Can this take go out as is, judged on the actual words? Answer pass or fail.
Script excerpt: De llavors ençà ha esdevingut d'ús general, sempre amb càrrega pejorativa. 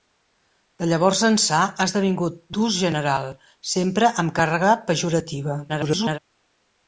fail